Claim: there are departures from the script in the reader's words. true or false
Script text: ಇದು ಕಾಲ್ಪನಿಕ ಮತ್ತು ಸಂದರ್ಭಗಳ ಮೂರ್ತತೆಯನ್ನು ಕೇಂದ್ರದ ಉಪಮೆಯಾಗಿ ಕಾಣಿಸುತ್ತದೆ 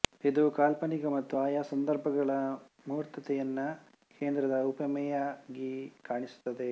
true